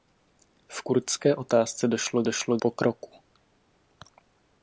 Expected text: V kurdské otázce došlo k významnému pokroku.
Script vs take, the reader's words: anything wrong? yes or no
yes